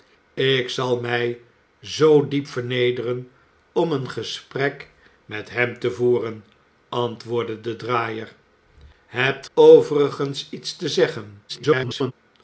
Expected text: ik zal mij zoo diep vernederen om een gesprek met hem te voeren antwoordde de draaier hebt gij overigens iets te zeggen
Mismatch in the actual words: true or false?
true